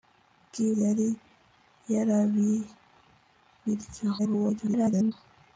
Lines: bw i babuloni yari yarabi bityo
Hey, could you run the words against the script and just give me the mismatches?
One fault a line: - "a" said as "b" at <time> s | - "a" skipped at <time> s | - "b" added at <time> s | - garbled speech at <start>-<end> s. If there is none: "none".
- "babuloni" skipped at 0.7 s
- garbled speech at 4.2-5.1 s